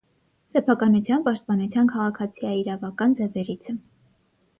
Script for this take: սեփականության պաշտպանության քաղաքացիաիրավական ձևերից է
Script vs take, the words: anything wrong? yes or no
no